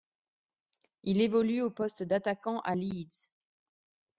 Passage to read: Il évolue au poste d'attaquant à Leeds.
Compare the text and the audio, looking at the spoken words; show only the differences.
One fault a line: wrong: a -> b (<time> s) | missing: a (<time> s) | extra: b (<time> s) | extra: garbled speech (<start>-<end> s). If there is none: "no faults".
no faults